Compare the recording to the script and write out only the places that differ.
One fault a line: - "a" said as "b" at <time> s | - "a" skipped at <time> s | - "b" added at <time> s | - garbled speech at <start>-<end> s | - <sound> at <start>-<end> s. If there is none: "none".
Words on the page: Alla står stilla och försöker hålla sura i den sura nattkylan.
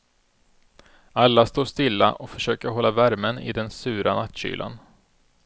- "sura" said as "värmen" at 2.9 s